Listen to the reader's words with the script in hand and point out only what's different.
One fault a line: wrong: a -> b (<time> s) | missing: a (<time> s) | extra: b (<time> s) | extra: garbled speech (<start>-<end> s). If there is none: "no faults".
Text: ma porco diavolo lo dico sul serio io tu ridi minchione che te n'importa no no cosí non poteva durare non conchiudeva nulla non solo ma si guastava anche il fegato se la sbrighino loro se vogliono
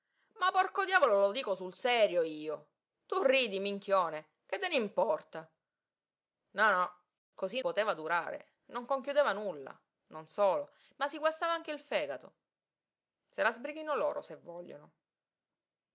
missing: non (7.6 s)